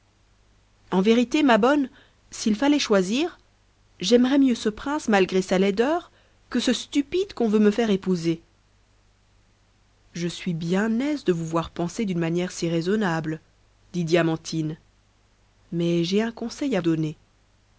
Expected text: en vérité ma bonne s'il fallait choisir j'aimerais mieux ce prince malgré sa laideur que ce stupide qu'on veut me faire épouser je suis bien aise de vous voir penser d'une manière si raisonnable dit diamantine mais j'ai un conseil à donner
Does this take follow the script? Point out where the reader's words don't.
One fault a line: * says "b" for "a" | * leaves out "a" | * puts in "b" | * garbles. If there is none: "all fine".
all fine